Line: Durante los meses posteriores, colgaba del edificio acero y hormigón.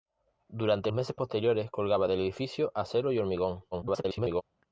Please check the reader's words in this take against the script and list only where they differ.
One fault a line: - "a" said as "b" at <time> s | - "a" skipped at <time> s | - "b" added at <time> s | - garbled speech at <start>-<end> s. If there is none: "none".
- "los" skipped at 0.9 s
- garbled speech at 3.7-4.4 s